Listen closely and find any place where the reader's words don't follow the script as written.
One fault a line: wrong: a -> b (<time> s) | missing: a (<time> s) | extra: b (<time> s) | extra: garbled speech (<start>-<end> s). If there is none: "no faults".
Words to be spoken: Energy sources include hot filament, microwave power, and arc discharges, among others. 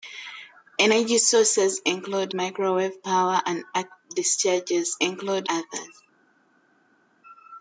missing: hot filament (2.3 s)
wrong: among -> include (5.0 s)